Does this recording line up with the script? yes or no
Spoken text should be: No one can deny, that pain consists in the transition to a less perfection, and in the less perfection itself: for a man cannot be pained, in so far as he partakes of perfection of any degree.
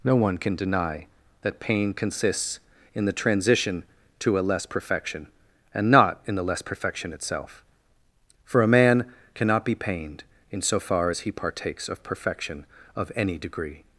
no